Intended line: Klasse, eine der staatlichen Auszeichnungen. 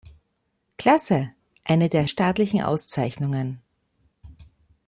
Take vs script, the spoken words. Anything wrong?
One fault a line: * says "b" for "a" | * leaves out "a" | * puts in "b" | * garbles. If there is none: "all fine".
all fine